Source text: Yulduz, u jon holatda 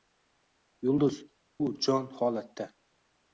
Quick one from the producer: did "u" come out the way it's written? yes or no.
yes